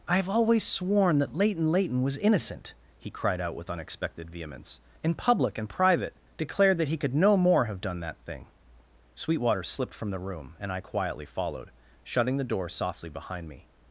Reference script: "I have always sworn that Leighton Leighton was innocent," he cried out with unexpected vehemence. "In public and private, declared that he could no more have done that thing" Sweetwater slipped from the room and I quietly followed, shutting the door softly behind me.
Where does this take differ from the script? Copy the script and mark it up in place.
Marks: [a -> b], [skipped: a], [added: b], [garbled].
"I have always sworn that Leighton Leighton was innocent," he cried out with unexpected vehemence. "In public and private, declared that he could no more have done that thing" Sweetwater slipped from the room and I quietly followed, shutting the door softly behind me.